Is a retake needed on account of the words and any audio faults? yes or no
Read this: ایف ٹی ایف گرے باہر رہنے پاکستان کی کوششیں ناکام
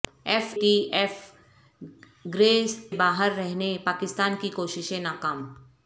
no